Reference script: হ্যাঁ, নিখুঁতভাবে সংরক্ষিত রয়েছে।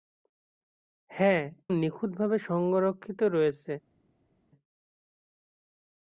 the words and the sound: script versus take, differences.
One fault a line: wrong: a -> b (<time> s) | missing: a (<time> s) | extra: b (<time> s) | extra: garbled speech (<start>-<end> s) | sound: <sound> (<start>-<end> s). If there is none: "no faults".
no faults